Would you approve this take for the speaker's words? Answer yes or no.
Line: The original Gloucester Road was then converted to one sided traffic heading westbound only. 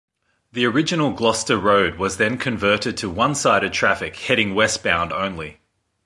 yes